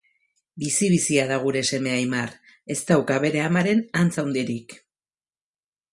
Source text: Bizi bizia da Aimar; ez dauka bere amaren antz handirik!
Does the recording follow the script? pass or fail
fail